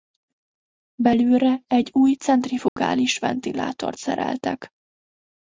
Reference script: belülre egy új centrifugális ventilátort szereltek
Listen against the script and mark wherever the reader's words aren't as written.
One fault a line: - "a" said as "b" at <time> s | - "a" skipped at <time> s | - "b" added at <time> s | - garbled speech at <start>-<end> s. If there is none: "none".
none